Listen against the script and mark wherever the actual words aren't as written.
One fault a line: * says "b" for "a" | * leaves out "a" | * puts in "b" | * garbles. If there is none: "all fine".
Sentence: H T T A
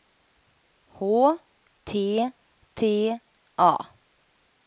all fine